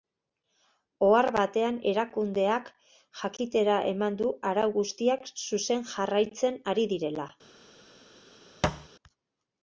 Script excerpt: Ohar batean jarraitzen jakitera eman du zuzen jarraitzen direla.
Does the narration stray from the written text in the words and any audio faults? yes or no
yes